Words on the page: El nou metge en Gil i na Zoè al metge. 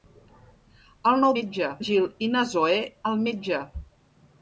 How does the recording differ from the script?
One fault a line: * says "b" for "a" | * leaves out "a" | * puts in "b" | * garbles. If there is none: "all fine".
all fine